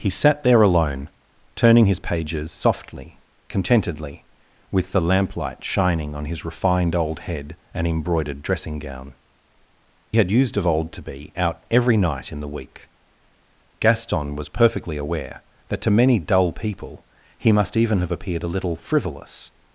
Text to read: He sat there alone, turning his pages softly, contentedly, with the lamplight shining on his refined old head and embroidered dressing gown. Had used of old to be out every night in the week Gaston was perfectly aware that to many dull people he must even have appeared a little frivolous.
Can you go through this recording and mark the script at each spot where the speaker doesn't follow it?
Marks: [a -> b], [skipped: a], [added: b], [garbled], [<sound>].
He sat there alone, turning his pages softly, contentedly, with the lamplight shining on his refined old head and embroidered dressing gown. Had used of old to be out every night in the week Gaston was perfectly aware that to many dull people he must even have appeared a little frivolous.